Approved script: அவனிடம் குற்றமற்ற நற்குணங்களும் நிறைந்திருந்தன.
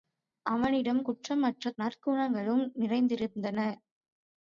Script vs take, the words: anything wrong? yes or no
no